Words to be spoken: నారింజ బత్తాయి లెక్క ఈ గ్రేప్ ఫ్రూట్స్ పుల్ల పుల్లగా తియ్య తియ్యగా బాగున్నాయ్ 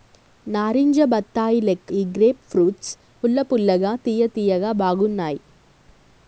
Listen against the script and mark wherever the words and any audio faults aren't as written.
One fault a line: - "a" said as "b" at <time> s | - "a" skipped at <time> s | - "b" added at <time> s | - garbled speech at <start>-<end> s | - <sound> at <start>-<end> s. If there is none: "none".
none